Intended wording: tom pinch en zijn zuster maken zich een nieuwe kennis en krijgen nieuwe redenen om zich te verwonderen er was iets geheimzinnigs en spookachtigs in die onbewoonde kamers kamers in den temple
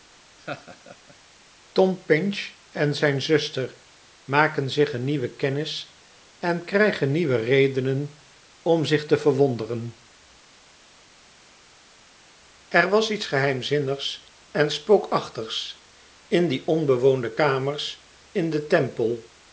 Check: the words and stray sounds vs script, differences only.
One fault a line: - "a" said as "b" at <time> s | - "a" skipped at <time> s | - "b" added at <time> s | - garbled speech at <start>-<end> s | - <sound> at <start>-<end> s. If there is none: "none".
- laugh at 0.4-1.2 s
- "kamers" skipped at 18.1 s